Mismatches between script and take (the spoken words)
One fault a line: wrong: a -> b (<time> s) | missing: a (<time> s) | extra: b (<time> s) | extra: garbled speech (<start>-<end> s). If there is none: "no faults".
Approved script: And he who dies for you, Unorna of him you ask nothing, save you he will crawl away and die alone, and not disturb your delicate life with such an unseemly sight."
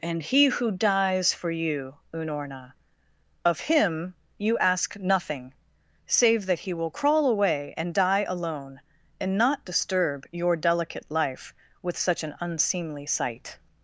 wrong: you -> that (6.5 s)